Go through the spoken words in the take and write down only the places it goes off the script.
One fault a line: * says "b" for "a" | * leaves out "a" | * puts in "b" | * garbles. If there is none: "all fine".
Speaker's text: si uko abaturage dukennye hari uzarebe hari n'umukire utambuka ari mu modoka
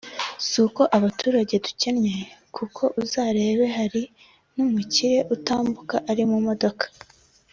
* says "kuko" for "hari"